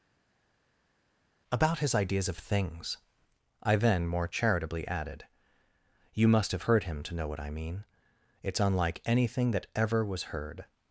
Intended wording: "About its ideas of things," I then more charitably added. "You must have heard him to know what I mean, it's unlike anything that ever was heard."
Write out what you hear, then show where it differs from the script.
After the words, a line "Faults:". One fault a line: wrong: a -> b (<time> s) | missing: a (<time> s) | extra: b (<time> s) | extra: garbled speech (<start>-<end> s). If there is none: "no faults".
"About his ideas of things," I then more charitably added. "You must have heard him to know what I mean, it's unlike anything that ever was heard."
Faults:
wrong: its -> his (1.8 s)